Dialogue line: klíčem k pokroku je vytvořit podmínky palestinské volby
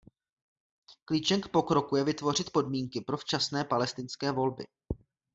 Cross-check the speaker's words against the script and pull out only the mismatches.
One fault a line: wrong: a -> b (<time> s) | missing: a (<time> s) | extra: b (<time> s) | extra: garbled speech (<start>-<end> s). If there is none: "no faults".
extra: pro včasné (3.0 s)